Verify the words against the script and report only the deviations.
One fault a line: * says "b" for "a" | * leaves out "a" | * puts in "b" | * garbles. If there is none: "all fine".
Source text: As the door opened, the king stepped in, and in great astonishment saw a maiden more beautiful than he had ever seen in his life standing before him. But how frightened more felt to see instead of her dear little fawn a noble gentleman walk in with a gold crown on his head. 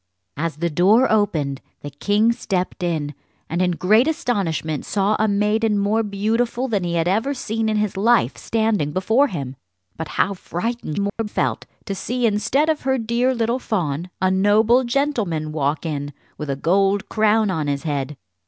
all fine